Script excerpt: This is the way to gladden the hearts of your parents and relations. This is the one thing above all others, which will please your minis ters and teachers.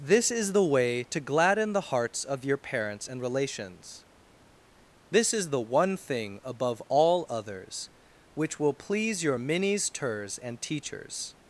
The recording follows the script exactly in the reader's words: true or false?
true